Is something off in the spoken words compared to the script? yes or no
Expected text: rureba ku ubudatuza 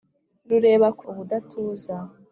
no